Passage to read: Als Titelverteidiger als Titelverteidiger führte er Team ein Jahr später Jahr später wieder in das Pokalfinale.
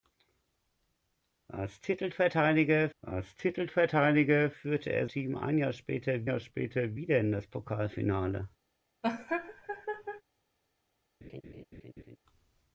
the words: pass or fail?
pass